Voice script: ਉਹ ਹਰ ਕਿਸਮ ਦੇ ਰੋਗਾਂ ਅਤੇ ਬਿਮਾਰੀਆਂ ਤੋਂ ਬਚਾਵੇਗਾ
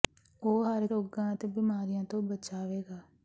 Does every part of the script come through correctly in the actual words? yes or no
no